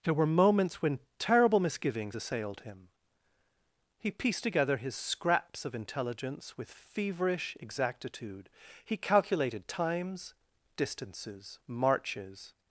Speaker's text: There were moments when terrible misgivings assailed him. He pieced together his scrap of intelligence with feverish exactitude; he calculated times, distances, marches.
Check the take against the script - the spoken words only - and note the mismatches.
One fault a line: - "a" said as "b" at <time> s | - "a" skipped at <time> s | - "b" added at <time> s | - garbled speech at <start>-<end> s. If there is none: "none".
- "scrap" said as "scraps" at 4.9 s